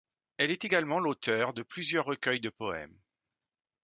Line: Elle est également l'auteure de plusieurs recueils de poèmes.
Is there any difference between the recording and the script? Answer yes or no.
no